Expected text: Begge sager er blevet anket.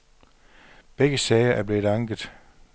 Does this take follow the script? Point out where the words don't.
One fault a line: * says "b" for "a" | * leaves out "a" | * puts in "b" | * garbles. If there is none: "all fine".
all fine